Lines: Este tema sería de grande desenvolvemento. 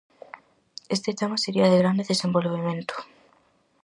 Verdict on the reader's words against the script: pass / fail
pass